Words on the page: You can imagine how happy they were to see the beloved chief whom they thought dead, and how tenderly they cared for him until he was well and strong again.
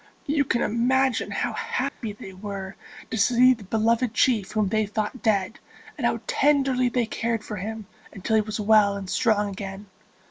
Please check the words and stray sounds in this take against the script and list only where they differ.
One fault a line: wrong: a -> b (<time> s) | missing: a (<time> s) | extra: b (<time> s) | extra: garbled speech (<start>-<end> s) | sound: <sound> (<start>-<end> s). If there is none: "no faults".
sound: dropout (1.9-2.0 s)